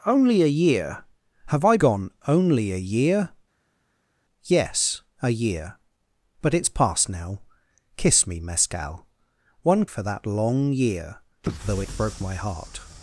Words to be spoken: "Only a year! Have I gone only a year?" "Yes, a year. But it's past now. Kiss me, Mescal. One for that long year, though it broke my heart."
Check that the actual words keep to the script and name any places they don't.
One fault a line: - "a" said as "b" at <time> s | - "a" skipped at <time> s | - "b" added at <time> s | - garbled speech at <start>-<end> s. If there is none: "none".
none